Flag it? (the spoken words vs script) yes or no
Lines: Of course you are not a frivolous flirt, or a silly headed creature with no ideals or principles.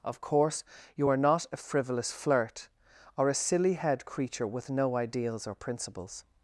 yes